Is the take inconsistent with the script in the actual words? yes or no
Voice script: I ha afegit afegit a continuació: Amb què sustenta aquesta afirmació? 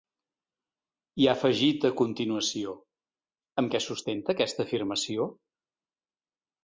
yes